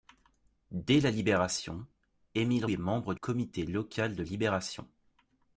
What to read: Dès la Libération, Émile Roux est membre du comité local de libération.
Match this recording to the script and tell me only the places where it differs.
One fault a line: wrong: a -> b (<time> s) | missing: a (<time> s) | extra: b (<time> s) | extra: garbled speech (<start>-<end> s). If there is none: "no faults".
missing: Roux (2.6 s)
missing: du (3.1 s)